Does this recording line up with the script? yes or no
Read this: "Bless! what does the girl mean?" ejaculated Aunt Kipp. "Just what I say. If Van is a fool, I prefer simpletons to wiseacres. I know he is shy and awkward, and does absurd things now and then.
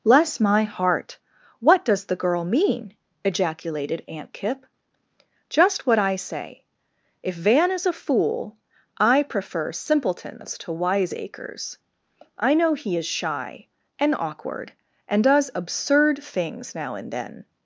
no